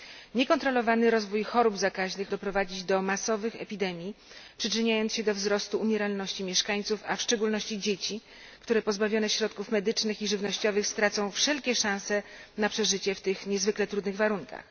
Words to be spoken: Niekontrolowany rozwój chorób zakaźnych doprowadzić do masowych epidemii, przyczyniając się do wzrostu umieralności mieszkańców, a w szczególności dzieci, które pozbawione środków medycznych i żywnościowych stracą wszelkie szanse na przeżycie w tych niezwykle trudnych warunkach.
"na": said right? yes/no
yes